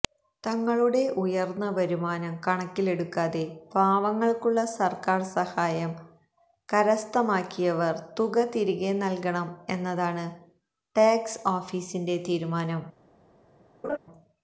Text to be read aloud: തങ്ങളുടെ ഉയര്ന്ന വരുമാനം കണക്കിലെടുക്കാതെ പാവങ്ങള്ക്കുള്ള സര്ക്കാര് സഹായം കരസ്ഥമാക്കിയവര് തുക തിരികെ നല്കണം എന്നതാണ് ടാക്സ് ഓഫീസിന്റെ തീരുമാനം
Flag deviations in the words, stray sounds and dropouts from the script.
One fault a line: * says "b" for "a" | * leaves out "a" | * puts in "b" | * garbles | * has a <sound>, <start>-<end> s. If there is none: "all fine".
* has a laugh, 13.8-14.0 s